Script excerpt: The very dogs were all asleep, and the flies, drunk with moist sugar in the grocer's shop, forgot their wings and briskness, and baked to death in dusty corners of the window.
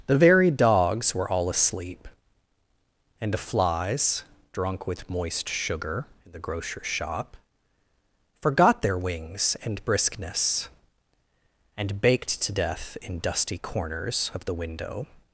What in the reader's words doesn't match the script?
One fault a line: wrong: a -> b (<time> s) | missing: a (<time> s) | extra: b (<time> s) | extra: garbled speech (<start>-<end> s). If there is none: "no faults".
no faults